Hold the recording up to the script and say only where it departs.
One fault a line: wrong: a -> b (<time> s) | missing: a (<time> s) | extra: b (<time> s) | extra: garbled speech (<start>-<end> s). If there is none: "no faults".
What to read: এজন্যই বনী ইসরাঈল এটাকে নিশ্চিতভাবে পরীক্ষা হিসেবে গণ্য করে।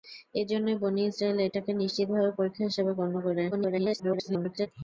extra: garbled speech (3.5-4.7 s)